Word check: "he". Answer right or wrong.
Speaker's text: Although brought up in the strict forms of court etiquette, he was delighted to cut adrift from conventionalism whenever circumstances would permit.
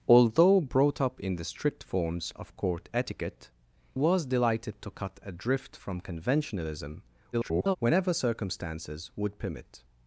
wrong